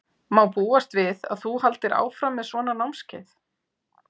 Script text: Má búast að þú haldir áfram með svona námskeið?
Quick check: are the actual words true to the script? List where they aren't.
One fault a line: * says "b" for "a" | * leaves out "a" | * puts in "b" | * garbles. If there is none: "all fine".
* puts in "við"